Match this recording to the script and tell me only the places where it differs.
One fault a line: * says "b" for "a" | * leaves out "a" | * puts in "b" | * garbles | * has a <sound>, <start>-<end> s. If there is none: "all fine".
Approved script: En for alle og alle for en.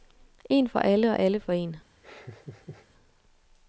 * has a laugh, 2.0-2.9 s